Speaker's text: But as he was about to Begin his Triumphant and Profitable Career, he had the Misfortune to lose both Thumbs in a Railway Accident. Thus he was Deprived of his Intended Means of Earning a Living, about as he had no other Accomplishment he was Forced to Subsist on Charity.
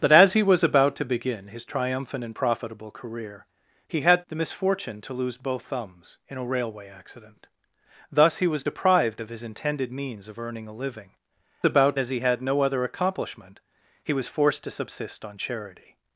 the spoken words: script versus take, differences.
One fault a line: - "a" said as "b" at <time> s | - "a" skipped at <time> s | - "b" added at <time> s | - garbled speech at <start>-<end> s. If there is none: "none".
none